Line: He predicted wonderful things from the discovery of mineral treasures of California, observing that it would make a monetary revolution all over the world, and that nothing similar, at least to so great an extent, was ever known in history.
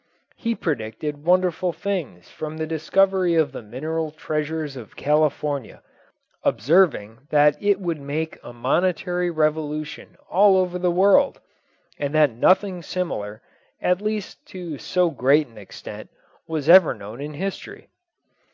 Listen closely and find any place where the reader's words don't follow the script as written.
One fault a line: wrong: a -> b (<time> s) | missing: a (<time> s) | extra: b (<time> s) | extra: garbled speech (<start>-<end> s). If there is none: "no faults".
extra: the (3.5 s)